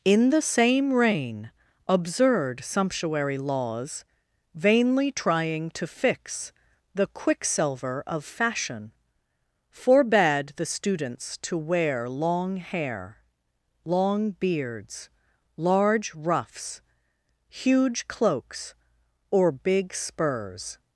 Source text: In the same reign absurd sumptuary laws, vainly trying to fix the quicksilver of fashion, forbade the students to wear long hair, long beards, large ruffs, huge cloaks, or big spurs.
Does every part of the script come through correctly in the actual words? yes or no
yes